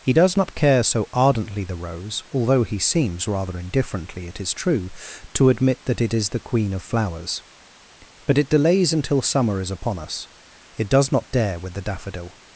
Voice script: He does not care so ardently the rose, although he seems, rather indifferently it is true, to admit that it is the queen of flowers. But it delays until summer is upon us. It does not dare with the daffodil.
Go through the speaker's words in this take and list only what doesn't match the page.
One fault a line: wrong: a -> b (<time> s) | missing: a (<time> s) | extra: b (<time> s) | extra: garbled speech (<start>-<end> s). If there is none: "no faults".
no faults